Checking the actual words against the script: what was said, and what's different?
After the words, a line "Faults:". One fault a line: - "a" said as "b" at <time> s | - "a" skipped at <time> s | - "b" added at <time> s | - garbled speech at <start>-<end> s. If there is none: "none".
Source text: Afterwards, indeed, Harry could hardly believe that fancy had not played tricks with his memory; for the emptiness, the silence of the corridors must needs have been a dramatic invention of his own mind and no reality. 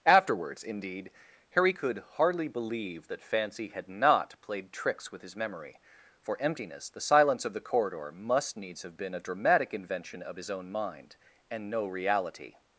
Afterwards, indeed, Harry could hardly believe that fancy had not played tricks with his memory; for emptiness, the silence of the corridor must needs have been a dramatic invention of his own mind and no reality.
Faults:
- "the" skipped at 6.4 s
- "corridors" said as "corridor" at 7.6 s